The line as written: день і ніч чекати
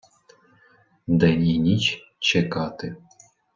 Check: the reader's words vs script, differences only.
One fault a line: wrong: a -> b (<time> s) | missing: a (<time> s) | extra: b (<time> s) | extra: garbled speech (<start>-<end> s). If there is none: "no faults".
no faults